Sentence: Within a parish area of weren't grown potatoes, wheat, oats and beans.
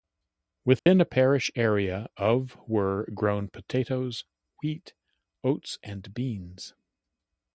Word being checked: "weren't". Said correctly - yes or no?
no